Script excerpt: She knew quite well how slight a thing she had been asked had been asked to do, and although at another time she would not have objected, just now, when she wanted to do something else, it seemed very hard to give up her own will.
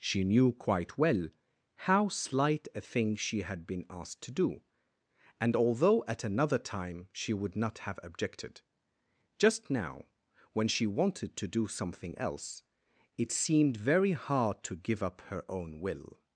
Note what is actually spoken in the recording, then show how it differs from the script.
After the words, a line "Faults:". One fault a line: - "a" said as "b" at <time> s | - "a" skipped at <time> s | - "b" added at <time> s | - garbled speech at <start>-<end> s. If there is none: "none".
She knew quite well how slight a thing she had been asked to do, and although at another time she would not have objected, just now, when she wanted to do something else, it seemed very hard to give up her own will.
Faults:
- "had been asked" skipped at 4.2 s